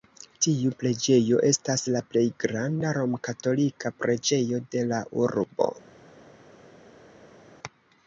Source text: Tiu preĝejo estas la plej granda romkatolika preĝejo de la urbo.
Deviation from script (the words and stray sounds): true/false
false